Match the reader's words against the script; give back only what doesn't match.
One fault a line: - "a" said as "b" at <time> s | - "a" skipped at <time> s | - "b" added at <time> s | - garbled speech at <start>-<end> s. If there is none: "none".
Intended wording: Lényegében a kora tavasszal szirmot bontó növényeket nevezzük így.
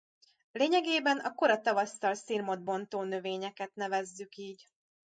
none